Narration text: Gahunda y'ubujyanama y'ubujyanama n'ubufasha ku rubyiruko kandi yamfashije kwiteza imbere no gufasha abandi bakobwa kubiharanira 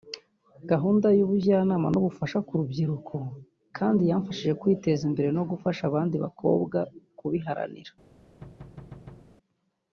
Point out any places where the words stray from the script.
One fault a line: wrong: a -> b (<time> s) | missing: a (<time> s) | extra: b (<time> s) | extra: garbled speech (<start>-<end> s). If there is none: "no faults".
missing: y'ubujyanama (1.9 s)